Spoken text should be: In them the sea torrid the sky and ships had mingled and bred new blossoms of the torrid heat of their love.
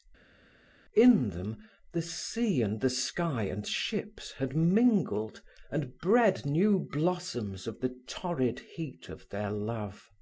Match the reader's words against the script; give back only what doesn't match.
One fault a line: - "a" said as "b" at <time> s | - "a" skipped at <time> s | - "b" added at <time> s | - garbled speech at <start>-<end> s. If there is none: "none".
- "torrid" said as "and" at 2.6 s